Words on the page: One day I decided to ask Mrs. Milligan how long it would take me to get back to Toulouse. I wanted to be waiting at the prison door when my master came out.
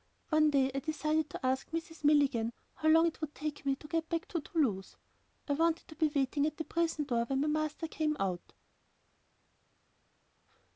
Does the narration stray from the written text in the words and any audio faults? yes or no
no